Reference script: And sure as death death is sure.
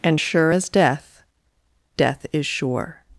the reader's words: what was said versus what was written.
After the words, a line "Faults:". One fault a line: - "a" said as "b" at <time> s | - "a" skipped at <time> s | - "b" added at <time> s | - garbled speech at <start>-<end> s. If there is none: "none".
And sure as death death is sure.
Faults:
none